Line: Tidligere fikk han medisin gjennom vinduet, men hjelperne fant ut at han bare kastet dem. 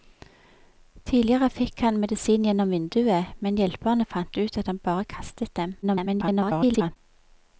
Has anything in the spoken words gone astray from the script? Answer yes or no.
yes